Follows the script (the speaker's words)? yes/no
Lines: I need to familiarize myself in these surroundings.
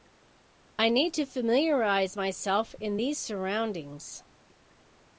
yes